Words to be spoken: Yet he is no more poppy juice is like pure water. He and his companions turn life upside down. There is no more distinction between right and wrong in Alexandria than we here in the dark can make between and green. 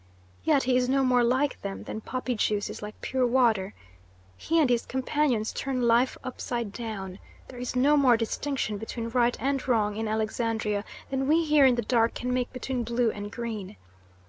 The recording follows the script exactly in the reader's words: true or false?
false